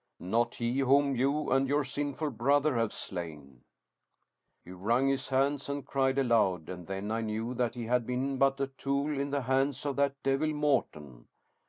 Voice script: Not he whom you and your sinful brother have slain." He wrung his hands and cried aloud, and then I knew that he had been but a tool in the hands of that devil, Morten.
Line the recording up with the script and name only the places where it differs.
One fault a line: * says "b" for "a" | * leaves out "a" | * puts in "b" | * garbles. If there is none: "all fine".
all fine